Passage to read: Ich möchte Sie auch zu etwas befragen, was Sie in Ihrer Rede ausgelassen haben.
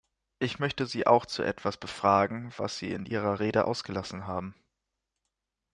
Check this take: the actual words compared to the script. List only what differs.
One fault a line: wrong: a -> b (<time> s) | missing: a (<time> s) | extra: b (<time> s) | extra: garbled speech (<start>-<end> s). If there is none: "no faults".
no faults